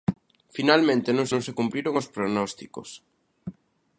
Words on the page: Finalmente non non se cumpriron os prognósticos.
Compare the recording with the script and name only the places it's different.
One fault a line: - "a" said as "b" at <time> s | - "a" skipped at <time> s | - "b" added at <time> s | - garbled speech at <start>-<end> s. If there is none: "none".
none